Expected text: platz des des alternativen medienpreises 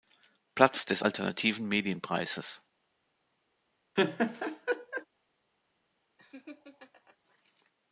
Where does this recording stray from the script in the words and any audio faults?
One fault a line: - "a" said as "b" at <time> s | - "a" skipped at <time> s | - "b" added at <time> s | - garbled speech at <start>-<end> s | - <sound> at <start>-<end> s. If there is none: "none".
- "des" skipped at 1.0 s
- laugh at 4.0-5.1 s
- laugh at 6.2-7.2 s